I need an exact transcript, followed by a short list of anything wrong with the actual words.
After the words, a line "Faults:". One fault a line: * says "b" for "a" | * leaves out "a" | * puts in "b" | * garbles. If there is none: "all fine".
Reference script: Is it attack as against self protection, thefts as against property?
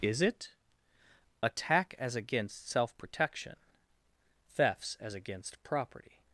Is it attack as against self protection, thefts as against property?
Faults:
all fine